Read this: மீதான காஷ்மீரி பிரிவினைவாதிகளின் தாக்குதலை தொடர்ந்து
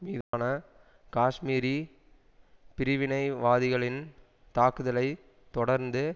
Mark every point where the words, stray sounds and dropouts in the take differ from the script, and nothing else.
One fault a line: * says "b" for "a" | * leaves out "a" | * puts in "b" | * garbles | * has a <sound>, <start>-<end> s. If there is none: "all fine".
* has a dropout, 0.2-0.3 s